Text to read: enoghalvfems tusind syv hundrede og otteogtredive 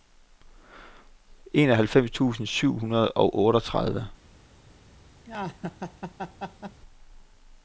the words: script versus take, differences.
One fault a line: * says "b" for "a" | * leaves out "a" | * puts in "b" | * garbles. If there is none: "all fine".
all fine